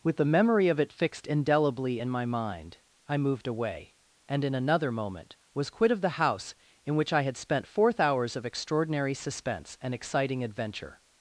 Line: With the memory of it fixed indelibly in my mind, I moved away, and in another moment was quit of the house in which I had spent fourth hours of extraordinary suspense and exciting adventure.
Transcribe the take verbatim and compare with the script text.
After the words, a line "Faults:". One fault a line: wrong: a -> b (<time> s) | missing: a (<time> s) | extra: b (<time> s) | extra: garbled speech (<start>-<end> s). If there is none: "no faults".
With the memory of it fixed indelibly in my mind, I moved away, and in another moment was quit of the house in which I had spent fourth hours of extraordinary suspense and exciting adventure.
Faults:
no faults